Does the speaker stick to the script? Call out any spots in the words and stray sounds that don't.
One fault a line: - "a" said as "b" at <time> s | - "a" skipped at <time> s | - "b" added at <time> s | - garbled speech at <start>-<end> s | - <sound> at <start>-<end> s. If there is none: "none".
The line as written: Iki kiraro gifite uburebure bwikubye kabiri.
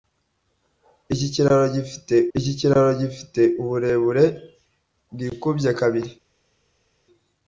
- "iki kiraro gifite" added at 2.4 s